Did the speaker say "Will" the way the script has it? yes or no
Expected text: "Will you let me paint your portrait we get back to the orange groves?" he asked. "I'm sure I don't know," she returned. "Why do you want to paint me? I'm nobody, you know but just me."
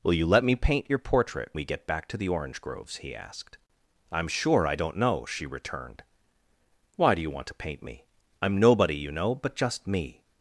yes